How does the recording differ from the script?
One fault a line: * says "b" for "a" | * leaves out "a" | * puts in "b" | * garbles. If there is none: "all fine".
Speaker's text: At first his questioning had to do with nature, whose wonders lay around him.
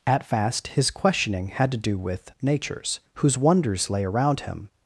* says "fast" for "first"
* says "natures" for "nature"